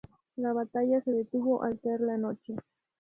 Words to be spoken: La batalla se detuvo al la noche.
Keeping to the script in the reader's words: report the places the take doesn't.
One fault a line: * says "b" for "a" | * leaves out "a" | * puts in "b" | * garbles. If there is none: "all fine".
* puts in "caer"